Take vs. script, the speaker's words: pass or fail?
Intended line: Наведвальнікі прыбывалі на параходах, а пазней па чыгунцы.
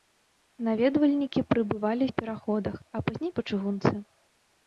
pass